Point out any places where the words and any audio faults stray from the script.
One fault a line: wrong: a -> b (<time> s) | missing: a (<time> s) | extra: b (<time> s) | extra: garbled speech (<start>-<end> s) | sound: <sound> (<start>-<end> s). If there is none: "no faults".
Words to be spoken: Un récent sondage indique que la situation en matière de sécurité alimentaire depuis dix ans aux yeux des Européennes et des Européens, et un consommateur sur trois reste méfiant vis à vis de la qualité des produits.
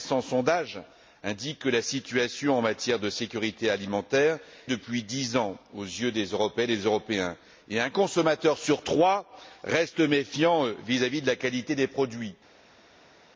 no faults